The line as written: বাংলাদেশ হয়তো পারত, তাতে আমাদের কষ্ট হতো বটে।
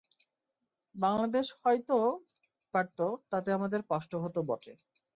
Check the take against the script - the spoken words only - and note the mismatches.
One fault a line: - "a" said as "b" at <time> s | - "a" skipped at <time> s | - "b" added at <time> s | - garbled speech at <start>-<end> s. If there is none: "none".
none